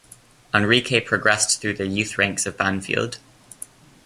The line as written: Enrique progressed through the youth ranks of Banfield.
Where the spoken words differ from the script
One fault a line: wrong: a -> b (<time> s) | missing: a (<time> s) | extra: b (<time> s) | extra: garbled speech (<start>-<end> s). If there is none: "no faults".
no faults